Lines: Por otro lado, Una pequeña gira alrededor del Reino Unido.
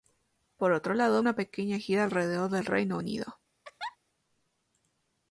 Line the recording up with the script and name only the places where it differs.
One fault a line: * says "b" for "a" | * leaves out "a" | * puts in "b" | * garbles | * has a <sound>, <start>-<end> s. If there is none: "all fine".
* has a laugh, 3.6-4.0 s